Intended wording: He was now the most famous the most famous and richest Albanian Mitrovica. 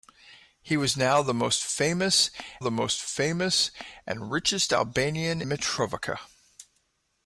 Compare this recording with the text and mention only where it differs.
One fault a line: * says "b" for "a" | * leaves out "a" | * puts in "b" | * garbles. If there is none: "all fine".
all fine